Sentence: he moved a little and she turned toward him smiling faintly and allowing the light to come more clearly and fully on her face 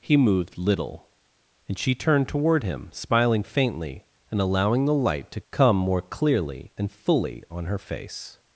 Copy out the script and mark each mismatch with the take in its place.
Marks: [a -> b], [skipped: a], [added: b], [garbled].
he moved [skipped: a] little and she turned toward him smiling faintly and allowing the light to come more clearly and fully on her face